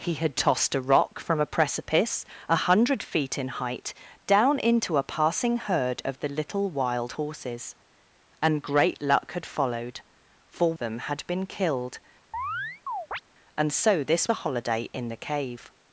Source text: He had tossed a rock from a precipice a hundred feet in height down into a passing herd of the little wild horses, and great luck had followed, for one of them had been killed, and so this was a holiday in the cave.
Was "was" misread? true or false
true